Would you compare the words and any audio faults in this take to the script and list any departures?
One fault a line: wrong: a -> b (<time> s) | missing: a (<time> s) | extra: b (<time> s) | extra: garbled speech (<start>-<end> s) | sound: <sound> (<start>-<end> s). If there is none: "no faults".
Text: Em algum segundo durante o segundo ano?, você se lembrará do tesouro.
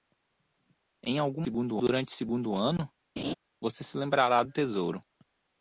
sound: laugh (3.2-3.3 s)